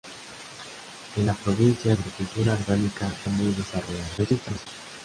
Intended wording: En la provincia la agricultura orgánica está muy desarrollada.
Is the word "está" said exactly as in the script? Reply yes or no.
no